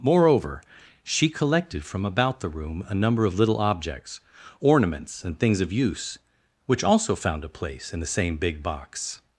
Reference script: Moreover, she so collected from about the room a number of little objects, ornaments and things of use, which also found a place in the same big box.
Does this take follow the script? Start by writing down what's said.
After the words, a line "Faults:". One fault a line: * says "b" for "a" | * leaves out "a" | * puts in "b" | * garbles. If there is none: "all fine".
Moreover, she collected from about the room a number of little objects, ornaments and things of use, which also found a place in the same big box.
Faults:
* leaves out "so"